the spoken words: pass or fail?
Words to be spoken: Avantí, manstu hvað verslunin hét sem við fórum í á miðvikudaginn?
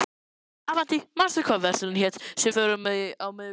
fail